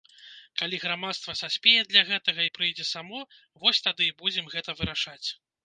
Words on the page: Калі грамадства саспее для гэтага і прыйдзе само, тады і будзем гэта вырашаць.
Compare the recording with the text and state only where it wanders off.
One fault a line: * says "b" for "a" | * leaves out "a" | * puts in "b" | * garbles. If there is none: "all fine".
* puts in "вось"